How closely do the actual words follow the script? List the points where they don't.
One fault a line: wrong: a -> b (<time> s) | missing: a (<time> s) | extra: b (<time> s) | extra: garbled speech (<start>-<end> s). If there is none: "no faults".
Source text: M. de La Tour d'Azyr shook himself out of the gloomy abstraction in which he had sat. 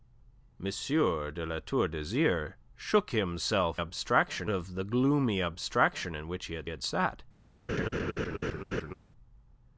wrong: out -> abstraction (3.8 s)
extra: had (6.7 s)